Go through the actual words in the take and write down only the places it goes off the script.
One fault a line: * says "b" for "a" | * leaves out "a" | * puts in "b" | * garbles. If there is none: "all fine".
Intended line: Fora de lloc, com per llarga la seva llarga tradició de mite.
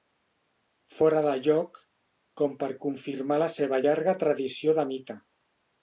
* says "confirmar" for "llarga"